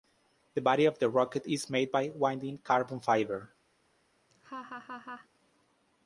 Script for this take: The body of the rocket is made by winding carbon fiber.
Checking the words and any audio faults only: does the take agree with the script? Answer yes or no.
no